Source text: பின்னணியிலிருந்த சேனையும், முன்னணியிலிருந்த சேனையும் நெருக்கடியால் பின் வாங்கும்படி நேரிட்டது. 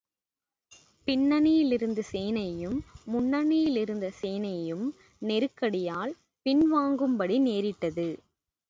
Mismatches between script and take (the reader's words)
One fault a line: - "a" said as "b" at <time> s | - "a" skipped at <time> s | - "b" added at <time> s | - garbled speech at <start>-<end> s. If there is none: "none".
none